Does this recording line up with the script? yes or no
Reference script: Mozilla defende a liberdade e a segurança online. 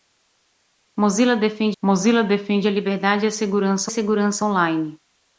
no